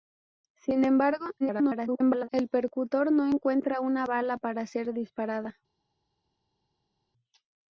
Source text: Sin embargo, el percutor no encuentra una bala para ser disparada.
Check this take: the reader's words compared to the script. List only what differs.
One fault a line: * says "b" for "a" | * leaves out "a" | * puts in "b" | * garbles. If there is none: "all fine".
* garbles